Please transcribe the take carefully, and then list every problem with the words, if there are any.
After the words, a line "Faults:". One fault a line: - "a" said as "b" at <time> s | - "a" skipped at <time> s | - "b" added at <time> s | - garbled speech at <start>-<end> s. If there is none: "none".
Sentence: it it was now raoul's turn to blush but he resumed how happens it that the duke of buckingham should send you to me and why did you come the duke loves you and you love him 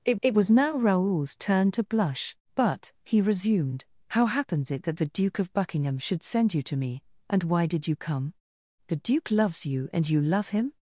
it it was now raoul's turn to blush but he resumed how happens it that the duke of buckingham should send you to me and why did you come the duke loves you and you love him
Faults:
none